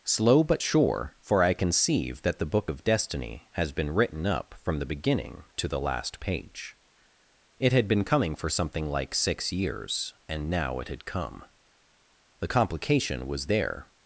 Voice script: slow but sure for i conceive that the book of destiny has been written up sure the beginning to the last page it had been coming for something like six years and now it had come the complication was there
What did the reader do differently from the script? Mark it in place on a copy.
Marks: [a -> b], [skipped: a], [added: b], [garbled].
slow but sure for i conceive that the book of destiny has been written up [sure -> from] the beginning to the last page it had been coming for something like six years and now it had come the complication was there